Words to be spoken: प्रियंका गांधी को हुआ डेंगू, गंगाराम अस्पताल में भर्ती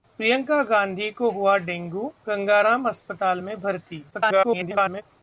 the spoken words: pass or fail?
fail